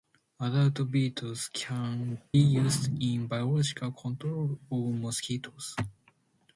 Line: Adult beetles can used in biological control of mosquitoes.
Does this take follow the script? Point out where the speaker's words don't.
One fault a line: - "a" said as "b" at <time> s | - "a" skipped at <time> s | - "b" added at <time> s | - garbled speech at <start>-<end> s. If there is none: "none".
none